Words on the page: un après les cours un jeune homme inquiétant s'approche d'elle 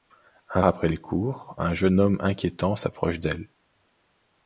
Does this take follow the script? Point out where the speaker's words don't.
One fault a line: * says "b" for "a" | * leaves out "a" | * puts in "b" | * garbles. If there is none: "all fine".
all fine